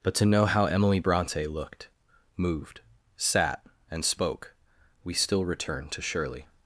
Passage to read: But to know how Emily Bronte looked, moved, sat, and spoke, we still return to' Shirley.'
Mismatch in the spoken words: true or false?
false